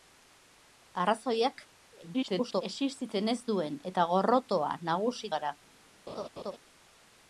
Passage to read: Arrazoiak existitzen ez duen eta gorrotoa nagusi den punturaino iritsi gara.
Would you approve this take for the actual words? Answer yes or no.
no